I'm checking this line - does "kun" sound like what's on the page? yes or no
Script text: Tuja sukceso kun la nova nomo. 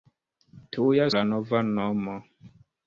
no